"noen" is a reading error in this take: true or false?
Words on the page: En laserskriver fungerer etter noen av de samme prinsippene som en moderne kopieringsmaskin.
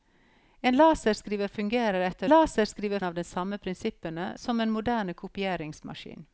true